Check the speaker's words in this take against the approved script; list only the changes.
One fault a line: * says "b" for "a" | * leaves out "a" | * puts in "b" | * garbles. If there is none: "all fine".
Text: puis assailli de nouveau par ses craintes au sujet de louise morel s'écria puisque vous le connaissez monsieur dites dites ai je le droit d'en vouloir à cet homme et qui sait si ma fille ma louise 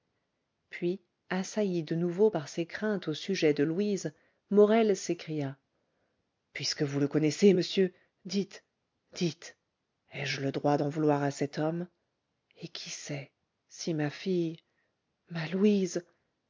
all fine